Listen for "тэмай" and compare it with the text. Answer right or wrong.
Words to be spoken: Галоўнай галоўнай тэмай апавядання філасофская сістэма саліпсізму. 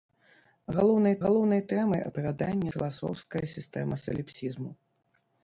right